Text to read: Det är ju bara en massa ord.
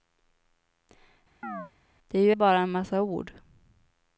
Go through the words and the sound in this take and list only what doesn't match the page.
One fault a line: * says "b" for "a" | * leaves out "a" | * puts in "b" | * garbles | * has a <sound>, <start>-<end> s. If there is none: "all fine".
* has a chirp, 1.4-1.7 s